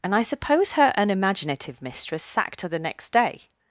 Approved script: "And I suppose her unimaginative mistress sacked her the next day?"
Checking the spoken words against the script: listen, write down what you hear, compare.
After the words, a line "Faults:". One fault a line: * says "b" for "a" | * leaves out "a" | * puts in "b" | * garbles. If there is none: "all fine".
"And I suppose her unimaginative mistress sacked her the next day?"
Faults:
all fine